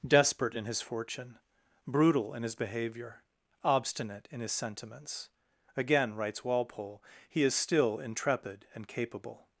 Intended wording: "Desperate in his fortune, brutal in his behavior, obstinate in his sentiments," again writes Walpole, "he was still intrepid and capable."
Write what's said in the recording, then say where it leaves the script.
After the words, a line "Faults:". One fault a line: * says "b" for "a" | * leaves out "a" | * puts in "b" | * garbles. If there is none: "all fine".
"Desperate in his fortune, brutal in his behavior, obstinate in his sentiments," again writes Walpole, "he is still intrepid and capable."
Faults:
* says "is" for "was"